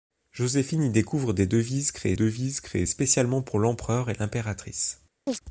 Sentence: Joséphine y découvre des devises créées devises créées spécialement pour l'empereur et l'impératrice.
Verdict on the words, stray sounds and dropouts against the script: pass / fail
fail